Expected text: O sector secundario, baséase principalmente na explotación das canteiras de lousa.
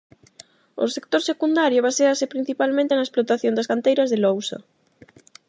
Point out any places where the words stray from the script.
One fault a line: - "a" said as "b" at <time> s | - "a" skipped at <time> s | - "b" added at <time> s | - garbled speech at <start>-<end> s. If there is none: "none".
none